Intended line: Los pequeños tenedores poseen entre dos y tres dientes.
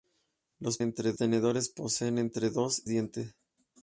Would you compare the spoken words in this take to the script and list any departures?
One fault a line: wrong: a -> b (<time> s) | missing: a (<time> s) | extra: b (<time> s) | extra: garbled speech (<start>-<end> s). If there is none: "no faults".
wrong: pequeños -> entre (0.8 s)
missing: y tres (2.8 s)